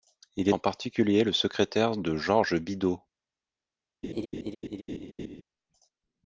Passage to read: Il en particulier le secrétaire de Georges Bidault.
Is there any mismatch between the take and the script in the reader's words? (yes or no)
no